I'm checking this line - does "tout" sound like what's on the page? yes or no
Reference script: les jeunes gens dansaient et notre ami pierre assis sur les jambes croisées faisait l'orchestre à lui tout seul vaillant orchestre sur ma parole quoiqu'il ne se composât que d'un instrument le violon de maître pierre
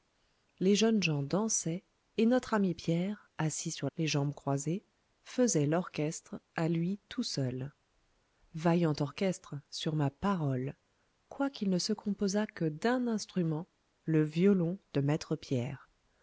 yes